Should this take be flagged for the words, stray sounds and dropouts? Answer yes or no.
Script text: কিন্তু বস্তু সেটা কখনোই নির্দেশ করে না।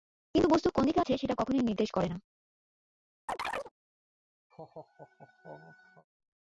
yes